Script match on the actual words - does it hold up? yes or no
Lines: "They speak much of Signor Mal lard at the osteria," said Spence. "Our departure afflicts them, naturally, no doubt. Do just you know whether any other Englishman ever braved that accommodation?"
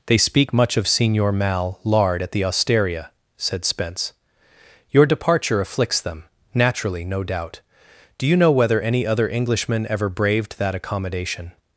no